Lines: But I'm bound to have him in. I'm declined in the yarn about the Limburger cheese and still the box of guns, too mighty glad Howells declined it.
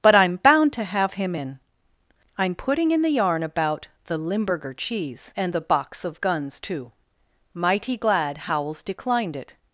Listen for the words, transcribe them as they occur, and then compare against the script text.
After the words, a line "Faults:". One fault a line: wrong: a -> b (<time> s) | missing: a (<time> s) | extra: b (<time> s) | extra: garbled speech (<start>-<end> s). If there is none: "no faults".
But I'm bound to have him in. I'm putting in the yarn about the Limburger cheese and the box of guns, too mighty glad Howells declined it.
Faults:
wrong: declined -> putting (2.5 s)
missing: still (5.5 s)